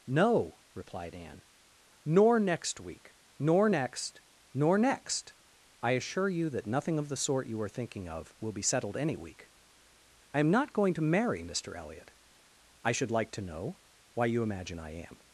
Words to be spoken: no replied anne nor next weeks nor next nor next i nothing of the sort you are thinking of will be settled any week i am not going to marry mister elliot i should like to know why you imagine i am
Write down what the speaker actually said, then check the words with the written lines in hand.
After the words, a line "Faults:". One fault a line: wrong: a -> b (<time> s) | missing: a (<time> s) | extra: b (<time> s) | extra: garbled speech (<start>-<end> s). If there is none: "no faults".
no replied anne nor next week nor next nor next i assure you that nothing of the sort you are thinking of will be settled any week i am not going to marry mister elliot i should like to know why you imagine i am
Faults:
wrong: weeks -> week (2.8 s)
extra: assure you that (5.9 s)